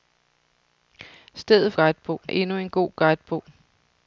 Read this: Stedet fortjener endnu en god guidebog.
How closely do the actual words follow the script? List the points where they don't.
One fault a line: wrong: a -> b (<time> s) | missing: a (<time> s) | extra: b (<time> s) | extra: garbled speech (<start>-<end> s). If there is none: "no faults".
wrong: fortjener -> guidebog (1.7 s)